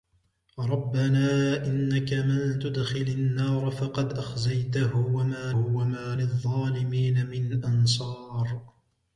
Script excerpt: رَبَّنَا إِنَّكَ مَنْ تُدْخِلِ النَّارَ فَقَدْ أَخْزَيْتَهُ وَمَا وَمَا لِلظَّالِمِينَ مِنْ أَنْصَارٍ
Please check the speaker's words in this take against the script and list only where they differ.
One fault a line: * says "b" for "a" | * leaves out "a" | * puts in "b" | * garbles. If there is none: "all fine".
all fine